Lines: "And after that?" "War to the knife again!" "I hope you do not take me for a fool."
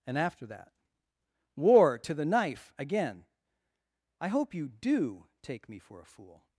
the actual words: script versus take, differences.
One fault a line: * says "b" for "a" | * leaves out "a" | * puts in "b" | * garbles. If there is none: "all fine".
* leaves out "not"